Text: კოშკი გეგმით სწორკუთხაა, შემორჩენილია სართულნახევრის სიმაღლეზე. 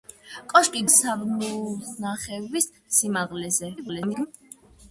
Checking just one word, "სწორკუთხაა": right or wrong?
wrong